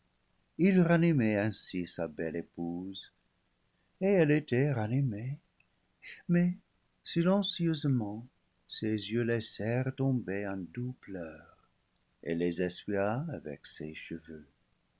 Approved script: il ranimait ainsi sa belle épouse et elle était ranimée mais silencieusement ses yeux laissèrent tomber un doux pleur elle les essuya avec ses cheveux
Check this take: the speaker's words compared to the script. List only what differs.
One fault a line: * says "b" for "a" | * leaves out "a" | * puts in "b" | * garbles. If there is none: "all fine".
all fine